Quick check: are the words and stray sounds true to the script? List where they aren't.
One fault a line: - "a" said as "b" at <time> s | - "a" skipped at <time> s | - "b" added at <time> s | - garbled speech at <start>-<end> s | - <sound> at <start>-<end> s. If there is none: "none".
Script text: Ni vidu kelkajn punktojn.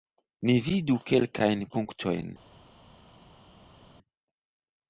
none